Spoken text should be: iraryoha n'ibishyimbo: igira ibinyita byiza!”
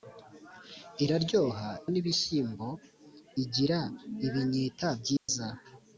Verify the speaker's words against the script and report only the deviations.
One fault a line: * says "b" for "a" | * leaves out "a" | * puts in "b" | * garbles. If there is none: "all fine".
all fine